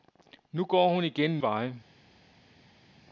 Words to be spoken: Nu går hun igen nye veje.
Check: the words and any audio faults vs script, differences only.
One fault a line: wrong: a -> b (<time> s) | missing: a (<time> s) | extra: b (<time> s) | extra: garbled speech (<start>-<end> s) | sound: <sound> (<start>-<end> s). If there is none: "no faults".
missing: nye (1.4 s)